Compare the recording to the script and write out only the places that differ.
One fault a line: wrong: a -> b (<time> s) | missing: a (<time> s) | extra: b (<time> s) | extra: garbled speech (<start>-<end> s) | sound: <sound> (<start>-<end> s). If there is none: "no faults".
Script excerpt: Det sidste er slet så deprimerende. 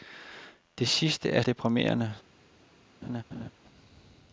missing: slet så (1.4 s)
sound: laugh (3.0-3.5 s)